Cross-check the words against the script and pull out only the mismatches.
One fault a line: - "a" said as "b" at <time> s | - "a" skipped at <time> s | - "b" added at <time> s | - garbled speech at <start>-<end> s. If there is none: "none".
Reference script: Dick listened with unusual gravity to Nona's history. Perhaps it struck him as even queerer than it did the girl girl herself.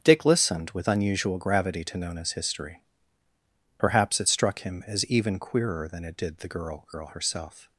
none